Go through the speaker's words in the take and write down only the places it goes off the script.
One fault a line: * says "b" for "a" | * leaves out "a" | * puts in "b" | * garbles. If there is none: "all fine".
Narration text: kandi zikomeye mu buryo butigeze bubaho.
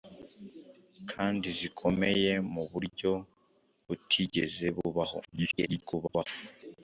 * garbles